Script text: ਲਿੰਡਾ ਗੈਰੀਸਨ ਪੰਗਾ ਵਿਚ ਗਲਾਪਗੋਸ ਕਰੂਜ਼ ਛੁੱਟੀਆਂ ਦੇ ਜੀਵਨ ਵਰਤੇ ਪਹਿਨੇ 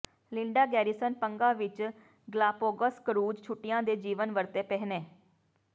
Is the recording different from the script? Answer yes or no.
no